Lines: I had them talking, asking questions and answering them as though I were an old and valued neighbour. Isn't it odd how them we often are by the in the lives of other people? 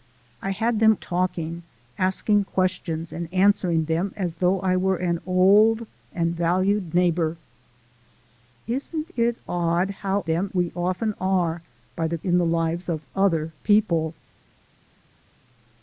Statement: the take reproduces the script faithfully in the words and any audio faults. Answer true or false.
true